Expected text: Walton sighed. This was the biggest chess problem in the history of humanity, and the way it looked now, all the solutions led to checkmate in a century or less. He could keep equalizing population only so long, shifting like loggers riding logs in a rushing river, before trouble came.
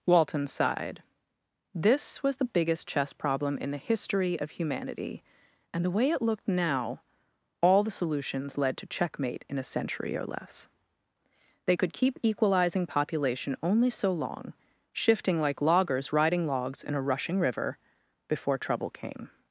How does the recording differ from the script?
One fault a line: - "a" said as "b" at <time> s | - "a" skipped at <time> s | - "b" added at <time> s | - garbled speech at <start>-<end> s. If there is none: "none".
- "He" said as "They" at 11.7 s